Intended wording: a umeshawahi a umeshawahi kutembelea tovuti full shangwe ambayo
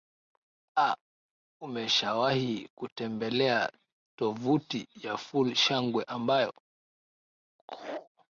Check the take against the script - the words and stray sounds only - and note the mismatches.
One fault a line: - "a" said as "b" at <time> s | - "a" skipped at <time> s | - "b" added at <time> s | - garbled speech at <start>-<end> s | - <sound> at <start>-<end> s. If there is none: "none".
- "a umeshawahi" skipped at 2.7 s
- "ya" added at 5.0 s
- laugh at 7.6-8.1 s